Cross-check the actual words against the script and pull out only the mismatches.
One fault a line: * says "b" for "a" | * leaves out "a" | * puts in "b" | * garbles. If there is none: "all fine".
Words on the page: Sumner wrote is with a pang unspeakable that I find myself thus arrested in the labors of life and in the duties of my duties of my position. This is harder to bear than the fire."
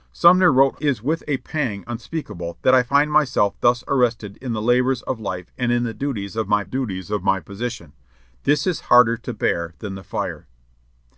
all fine